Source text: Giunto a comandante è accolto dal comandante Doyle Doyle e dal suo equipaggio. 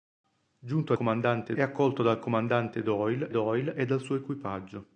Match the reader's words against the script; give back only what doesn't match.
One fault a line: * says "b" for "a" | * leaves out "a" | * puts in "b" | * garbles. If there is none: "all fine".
all fine